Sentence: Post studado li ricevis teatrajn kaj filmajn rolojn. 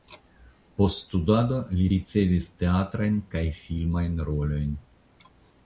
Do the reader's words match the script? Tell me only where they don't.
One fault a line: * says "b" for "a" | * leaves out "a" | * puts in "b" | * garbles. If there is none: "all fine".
all fine